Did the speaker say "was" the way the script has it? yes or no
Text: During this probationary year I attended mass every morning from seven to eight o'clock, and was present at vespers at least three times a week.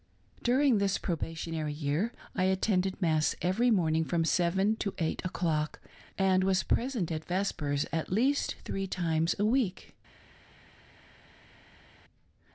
yes